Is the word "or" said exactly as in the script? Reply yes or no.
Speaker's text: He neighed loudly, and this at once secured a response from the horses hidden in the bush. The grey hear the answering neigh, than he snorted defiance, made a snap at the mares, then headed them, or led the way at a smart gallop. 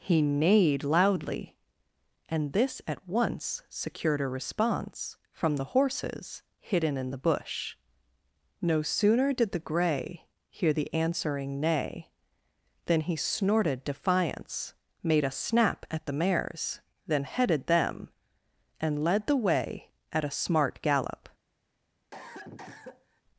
no